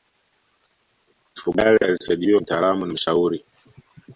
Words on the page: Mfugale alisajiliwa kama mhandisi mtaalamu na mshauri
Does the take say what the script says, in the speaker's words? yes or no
no